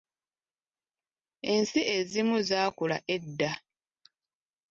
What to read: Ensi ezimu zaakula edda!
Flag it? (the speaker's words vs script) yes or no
no